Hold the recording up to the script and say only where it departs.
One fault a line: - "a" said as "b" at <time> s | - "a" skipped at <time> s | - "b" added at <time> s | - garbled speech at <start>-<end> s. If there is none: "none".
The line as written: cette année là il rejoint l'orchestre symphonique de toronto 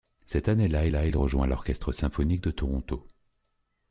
- "là" added at 0.9 s